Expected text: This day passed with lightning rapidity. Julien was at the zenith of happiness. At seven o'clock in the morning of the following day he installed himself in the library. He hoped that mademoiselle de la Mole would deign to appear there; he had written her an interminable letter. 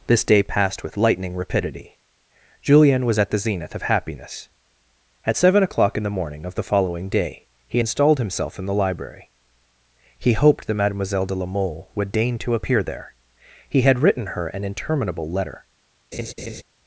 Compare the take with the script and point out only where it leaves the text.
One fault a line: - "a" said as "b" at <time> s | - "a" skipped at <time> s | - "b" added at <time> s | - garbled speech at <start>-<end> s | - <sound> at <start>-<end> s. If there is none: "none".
- laugh at 16.1-16.6 s